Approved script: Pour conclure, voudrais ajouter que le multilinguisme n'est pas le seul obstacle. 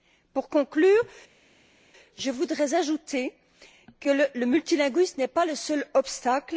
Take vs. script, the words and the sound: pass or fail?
fail